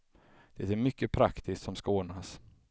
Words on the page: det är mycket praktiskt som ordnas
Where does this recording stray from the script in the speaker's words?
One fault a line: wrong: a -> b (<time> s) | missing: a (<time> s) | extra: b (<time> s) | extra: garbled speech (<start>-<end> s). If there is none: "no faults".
extra: ska (1.7 s)